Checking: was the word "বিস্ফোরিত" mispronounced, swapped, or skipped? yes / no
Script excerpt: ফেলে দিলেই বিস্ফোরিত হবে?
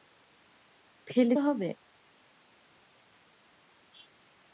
yes